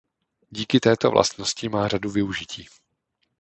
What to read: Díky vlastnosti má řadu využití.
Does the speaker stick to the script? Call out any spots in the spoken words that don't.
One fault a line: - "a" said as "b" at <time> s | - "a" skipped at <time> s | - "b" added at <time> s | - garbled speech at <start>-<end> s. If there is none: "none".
- "této" added at 0.8 s